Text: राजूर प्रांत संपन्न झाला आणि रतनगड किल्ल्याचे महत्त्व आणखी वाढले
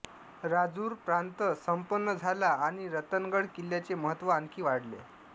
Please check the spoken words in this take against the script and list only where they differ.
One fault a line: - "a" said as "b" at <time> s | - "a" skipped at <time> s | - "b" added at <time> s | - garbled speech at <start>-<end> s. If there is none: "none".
none